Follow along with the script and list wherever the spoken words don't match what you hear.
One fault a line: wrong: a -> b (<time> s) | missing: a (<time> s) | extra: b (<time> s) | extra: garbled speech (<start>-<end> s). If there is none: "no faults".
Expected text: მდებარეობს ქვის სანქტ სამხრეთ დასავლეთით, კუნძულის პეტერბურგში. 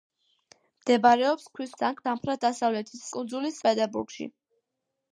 no faults